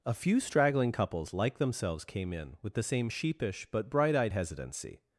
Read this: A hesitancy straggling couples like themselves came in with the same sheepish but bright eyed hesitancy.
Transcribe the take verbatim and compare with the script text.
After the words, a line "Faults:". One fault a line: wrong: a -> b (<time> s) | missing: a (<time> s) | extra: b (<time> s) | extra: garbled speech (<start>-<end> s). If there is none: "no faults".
A few straggling couples like themselves came in with the same sheepish but bright eyed hesitancy.
Faults:
wrong: hesitancy -> few (0.1 s)